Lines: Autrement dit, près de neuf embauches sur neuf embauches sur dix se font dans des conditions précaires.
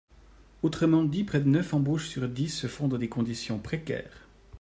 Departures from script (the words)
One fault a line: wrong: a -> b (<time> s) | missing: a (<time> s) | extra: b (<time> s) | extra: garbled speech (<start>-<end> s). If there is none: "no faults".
missing: neuf embauches sur (2.3 s)